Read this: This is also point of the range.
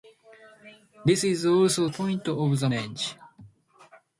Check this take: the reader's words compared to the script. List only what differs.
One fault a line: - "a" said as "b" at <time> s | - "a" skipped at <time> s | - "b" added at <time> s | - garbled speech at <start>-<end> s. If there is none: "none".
none